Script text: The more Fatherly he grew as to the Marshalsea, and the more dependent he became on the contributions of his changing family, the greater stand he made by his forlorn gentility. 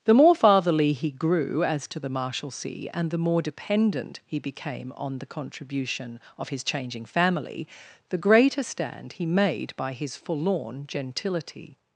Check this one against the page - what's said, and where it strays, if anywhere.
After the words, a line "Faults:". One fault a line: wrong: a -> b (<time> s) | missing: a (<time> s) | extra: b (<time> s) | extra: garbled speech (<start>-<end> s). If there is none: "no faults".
The more Fatherly he grew as to the Marshalsea, and the more dependent he became on the contribution of his changing family, the greater stand he made by his forlorn gentility.
Faults:
wrong: contributions -> contribution (5.3 s)